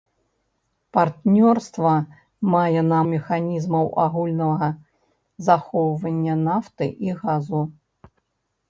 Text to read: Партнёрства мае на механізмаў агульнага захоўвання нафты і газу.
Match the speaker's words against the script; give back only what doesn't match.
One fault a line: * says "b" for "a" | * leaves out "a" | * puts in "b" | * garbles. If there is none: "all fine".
all fine